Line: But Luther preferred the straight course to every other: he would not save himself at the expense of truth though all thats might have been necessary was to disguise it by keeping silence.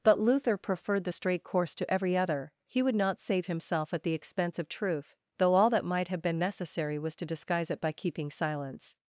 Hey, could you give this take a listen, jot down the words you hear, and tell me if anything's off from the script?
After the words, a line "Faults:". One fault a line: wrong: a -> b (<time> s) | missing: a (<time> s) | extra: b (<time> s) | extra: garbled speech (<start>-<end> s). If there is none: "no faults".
But Luther preferred the straight course to every other: he would not save himself at the expense of truth though all that might have been necessary was to disguise it by keeping silence.
Faults:
wrong: thats -> that (5.7 s)